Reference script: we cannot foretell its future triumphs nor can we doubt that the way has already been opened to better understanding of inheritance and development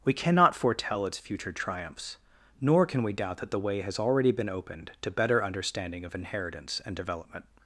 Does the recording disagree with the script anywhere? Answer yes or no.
no